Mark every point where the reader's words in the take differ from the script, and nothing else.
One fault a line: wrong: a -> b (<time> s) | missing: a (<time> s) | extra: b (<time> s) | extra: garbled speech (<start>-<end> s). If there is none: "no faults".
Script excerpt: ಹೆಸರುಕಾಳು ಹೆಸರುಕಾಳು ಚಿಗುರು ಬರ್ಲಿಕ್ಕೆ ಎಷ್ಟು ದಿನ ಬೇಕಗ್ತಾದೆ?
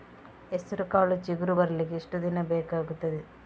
missing: ಹೆಸರುಕಾಳು (1.1 s)